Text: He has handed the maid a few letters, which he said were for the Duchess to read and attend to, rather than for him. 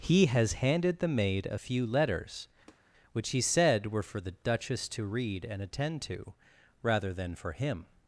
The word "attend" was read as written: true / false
true